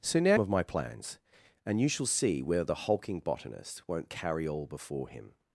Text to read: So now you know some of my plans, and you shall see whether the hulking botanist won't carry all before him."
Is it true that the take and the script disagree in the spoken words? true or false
true